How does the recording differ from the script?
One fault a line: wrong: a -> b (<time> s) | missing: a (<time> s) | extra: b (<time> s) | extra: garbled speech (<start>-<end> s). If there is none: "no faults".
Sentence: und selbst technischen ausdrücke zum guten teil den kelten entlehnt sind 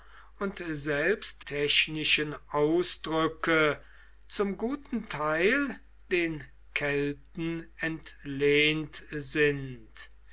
no faults